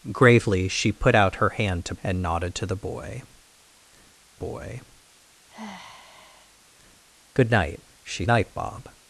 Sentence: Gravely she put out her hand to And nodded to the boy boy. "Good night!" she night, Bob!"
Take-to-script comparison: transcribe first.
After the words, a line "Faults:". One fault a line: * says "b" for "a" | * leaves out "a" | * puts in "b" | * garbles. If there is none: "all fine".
Gravely she put out her hand to And nodded to the boy boy. "Good night!" she night, Bob!"
Faults:
all fine